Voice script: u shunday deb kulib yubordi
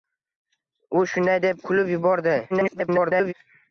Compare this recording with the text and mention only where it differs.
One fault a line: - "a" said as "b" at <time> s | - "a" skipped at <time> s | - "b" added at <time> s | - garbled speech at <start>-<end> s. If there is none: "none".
- garbled speech at 2.5-3.3 s